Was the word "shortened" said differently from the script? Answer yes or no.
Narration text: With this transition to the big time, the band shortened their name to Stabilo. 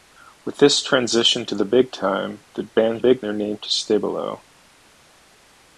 yes